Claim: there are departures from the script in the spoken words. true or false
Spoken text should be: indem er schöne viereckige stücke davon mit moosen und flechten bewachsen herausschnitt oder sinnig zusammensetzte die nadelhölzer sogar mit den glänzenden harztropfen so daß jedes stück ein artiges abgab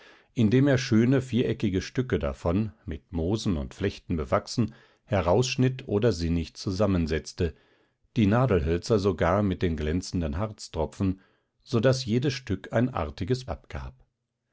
false